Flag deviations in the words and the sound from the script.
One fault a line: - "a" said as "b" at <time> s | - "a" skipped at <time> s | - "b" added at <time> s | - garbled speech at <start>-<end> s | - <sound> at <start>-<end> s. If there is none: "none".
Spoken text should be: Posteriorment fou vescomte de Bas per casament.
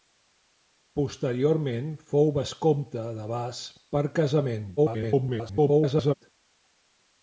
- garbled speech at 4.8-6.1 s